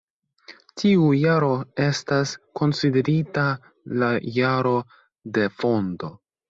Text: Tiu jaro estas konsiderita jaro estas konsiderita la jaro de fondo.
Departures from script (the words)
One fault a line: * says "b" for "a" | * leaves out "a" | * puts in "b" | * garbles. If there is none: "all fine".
* leaves out "jaro estas konsiderita"